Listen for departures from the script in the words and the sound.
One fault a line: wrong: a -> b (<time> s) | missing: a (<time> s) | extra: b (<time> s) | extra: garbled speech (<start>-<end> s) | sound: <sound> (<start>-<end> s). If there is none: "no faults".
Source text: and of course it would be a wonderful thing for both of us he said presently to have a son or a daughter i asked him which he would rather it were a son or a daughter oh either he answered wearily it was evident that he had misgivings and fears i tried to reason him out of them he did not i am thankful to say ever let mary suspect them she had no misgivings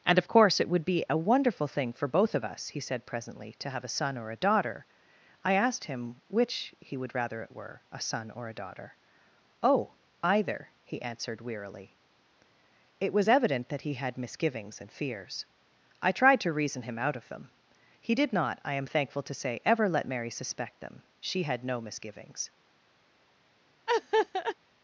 sound: laugh (23.9-24.6 s)